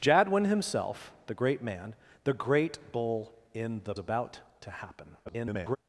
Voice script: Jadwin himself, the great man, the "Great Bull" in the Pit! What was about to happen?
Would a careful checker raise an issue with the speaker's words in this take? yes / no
yes